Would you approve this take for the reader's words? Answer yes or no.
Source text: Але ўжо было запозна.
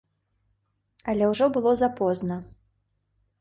yes